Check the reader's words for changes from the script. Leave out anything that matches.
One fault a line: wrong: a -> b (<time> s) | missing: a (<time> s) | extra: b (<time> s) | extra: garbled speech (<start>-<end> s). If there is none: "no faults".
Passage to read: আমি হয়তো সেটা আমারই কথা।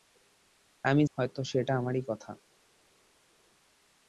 no faults